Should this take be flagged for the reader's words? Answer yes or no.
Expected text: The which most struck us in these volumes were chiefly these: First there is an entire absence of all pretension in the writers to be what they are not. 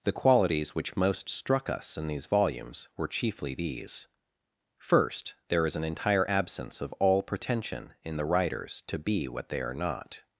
yes